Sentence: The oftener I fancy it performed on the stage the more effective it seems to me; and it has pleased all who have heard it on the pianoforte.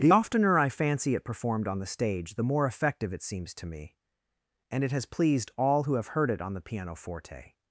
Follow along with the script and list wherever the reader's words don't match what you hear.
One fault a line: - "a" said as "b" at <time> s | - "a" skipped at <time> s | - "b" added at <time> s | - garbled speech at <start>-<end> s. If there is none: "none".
none